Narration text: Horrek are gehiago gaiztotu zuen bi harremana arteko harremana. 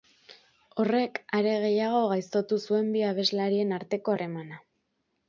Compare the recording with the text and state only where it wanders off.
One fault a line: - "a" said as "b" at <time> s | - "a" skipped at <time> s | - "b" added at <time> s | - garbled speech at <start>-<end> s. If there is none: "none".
- "harremana" said as "abeslarien" at 3.1 s